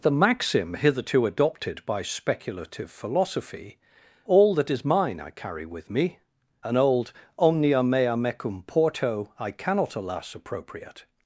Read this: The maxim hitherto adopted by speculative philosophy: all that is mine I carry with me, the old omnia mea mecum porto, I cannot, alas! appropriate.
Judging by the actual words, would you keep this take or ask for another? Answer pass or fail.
fail